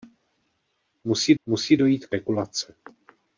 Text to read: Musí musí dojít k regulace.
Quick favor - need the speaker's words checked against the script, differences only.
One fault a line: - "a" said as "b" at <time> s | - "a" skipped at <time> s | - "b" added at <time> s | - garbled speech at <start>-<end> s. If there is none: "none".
none